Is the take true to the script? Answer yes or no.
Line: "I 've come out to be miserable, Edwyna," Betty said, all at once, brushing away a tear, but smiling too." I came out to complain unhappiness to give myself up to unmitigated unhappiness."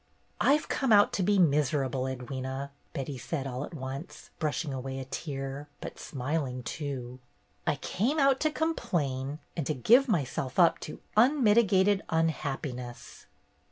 no